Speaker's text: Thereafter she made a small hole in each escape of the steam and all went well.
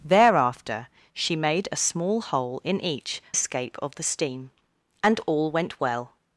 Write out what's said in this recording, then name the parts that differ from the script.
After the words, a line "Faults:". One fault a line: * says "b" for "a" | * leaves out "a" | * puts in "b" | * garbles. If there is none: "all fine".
Thereafter she made a small hole in each escape of the steam and all went well.
Faults:
all fine